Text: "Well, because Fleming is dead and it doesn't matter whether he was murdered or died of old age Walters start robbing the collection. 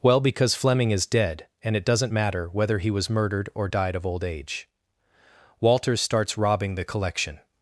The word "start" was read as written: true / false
false